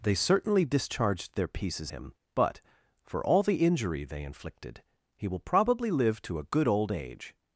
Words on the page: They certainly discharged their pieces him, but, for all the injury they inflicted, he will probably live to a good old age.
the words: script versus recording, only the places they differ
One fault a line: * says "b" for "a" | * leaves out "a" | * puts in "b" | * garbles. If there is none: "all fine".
all fine